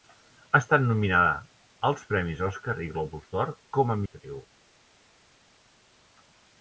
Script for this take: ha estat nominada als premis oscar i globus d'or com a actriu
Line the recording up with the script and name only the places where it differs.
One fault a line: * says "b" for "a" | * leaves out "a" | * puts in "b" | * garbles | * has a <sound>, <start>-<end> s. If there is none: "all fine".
all fine